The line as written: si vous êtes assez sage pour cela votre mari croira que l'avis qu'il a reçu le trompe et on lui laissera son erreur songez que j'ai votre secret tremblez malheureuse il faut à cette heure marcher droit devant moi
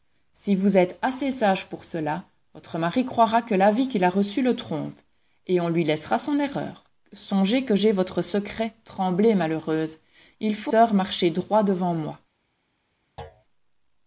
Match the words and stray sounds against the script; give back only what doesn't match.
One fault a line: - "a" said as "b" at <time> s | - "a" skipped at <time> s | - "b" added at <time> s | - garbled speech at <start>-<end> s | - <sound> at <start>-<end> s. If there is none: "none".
- "à cette" skipped at 10.7 s
- thud at 13.2-13.4 s